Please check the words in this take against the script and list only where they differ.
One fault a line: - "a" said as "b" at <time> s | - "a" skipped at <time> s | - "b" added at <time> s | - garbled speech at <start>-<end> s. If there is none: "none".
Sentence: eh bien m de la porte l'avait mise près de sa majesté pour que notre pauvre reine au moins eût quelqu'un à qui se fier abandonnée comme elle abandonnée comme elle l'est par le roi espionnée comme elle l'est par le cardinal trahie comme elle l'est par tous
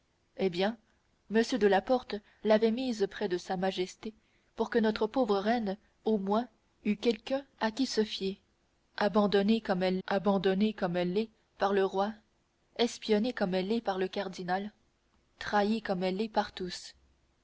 none